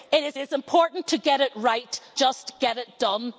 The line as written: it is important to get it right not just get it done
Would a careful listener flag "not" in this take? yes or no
yes